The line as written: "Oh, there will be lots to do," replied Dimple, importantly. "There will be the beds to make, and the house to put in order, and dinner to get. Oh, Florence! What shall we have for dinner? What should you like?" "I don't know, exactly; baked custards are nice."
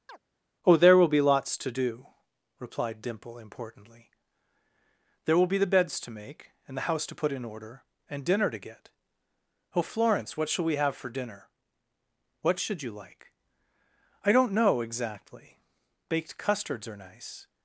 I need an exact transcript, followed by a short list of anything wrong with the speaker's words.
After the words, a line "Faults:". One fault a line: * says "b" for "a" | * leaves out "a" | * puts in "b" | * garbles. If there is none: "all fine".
"Oh, there will be lots to do," replied Dimple, importantly. "There will be the beds to make, and the house to put in order, and dinner to get. Oh, Florence! What shall we have for dinner? What should you like?" "I don't know, exactly; baked custards are nice."
Faults:
all fine